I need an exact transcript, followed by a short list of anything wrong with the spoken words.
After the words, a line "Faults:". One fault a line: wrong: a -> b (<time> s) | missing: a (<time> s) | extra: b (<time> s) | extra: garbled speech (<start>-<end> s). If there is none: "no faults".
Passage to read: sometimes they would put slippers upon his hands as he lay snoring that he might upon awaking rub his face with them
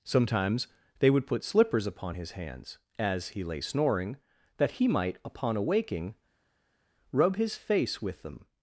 sometimes they would put slippers upon his hands as he lay snoring that he might upon awaking rub his face with them
Faults:
no faults